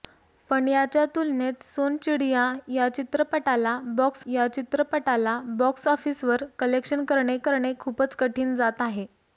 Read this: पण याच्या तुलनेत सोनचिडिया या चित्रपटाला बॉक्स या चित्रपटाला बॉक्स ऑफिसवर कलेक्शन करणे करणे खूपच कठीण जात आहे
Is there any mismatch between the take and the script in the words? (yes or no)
no